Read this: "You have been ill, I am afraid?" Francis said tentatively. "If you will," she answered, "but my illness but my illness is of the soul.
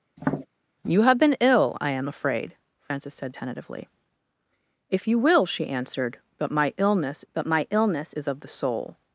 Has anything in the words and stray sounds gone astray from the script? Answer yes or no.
yes